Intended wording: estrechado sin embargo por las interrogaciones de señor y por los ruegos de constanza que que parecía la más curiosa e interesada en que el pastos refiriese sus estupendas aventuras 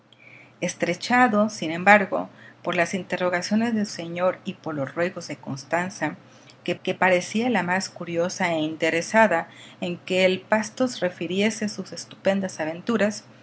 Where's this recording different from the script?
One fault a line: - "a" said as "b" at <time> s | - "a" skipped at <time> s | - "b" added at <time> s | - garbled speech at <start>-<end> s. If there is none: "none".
none